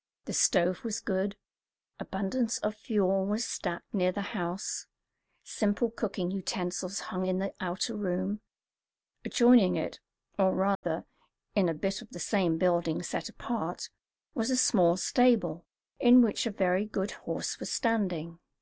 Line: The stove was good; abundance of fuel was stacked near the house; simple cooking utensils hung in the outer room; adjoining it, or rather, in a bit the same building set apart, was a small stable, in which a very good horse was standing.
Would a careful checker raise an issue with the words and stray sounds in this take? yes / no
yes